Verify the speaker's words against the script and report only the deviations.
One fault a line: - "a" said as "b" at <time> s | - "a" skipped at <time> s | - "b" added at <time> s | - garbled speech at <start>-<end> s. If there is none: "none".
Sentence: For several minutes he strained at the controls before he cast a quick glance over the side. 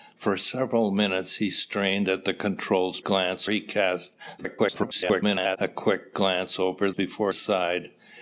- "before" said as "glance" at 3.0 s
- garbled speech at 4.4-5.6 s
- "the" said as "before" at 6.9 s